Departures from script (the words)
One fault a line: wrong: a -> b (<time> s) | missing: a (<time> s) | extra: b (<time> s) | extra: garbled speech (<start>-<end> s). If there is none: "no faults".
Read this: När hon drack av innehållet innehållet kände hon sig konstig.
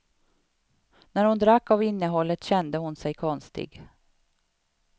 missing: innehållet (2.4 s)